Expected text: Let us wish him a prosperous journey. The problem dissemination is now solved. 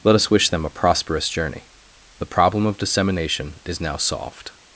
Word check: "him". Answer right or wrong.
wrong